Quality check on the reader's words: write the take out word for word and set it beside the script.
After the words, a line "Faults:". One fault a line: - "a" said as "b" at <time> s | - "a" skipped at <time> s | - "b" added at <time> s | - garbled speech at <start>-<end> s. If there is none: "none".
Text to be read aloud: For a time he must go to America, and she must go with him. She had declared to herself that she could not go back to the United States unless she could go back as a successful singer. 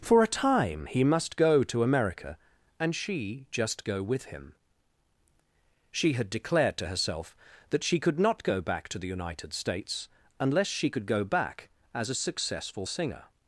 For a time he must go to America, and she just go with him. She had declared to herself that she could not go back to the United States unless she could go back as a successful singer.
Faults:
- "must" said as "just" at 3.5 s